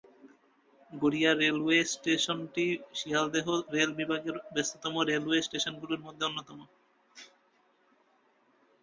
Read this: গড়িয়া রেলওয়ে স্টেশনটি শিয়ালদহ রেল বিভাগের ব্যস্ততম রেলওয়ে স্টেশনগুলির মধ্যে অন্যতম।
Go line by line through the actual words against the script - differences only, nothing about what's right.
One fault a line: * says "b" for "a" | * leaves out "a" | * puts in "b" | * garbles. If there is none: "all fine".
all fine